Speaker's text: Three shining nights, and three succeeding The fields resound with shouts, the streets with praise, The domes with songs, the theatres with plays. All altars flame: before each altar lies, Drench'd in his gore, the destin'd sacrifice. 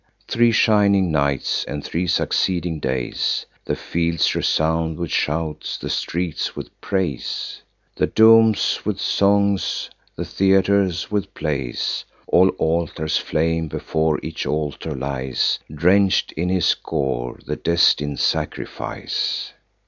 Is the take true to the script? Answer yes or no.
no